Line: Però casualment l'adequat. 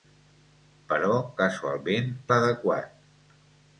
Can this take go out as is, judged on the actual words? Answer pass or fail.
pass